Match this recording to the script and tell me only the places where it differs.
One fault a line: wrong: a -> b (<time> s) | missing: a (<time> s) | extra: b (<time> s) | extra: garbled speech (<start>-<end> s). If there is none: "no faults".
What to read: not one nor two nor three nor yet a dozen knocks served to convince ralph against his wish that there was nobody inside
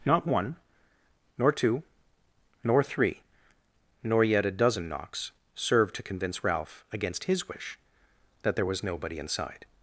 no faults